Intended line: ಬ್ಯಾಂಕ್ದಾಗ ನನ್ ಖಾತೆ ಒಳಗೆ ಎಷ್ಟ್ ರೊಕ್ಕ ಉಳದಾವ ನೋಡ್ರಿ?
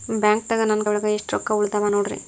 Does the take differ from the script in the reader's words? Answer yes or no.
yes